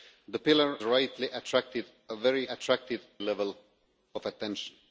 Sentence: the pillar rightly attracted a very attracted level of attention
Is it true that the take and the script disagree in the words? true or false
false